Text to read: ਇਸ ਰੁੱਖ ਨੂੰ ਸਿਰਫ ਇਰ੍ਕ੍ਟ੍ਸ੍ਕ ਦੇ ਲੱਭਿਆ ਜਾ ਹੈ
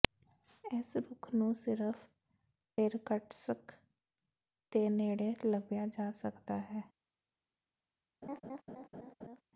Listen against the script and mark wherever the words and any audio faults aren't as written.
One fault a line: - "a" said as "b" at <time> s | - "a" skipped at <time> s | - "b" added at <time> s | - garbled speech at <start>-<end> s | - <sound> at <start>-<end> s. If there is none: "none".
- "ਨੇੜੇ" added at 4.9 s
- "ਸਕਦਾ" added at 6.1 s
- laugh at 8.2-9.4 s